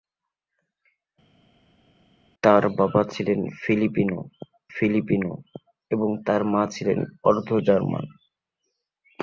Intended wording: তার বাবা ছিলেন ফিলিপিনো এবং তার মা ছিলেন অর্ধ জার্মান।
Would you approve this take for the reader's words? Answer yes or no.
no